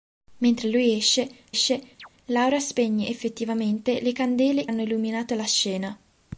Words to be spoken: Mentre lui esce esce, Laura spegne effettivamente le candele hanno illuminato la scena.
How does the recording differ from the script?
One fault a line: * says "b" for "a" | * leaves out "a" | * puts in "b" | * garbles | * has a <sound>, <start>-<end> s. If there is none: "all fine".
* has a chirp, 2.0-2.1 s